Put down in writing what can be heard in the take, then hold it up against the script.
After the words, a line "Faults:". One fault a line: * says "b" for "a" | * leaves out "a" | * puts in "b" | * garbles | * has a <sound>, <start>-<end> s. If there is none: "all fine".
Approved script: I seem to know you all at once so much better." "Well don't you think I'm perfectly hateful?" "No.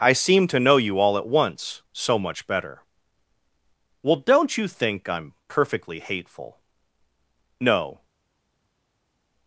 I seem to know you all at once so much better." "Well don't you think I'm perfectly hateful?" "No.
Faults:
all fine